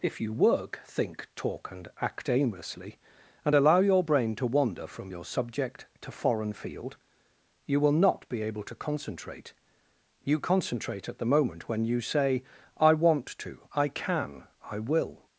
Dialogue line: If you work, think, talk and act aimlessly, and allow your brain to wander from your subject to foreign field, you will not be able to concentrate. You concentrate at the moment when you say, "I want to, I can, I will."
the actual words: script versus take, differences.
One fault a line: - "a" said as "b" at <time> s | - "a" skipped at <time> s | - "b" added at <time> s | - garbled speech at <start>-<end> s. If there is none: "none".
none